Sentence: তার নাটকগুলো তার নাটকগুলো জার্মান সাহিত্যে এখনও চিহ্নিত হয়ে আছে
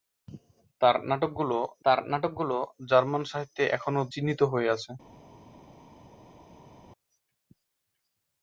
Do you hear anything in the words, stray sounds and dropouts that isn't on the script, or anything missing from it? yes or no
no